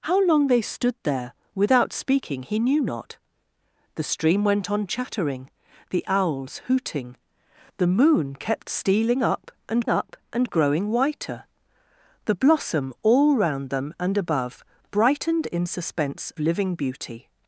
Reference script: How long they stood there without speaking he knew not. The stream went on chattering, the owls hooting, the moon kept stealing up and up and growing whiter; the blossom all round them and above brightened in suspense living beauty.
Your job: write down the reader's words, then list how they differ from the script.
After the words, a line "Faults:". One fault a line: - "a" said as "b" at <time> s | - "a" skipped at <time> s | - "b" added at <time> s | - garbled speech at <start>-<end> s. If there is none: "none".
How long they stood there without speaking he knew not. The stream went on chattering, the owls hooting, the moon kept stealing up and up and growing whiter; the blossom all round them and above brightened in suspense living beauty.
Faults:
none